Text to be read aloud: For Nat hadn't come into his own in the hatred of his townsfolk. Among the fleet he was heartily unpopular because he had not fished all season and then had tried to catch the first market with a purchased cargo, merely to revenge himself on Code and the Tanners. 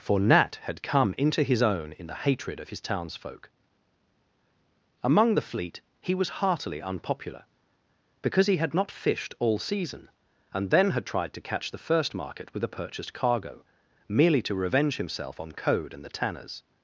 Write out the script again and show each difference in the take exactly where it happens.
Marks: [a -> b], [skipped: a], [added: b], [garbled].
For Nat [hadn't -> had] come into his own in the hatred of his townsfolk. Among the fleet he was heartily unpopular because he had not fished all season and then had tried to catch the first market with a purchased cargo, merely to revenge himself on Code and the Tanners.